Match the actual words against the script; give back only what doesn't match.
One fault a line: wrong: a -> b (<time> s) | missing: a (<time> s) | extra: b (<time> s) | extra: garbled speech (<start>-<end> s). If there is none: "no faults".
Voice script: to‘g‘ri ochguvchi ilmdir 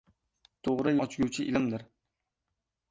no faults